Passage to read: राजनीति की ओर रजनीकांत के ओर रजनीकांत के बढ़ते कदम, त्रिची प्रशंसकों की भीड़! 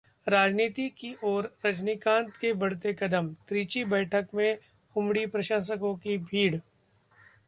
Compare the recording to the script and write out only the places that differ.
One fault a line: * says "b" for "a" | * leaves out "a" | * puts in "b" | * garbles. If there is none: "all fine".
* says "बढ़ते कदम त्रिची बैठक में उमड़ी" for "ओर रजनीकांत के बढ़ते कदम त्रिची"